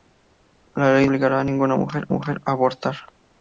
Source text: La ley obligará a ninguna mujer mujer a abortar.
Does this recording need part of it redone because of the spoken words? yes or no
no